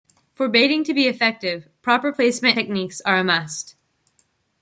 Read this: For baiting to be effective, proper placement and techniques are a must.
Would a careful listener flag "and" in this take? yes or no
yes